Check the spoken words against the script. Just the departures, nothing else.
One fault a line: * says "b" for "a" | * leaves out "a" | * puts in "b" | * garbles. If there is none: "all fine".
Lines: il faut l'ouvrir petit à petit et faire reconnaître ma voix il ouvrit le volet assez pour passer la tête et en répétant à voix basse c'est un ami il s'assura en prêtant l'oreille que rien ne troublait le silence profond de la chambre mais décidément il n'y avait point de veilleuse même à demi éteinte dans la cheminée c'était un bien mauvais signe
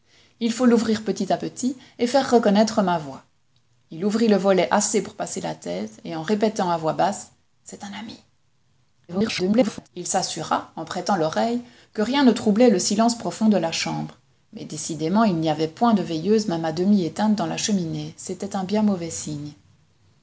* garbles